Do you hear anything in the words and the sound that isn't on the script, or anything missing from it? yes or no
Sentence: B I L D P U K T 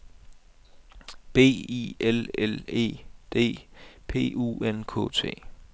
yes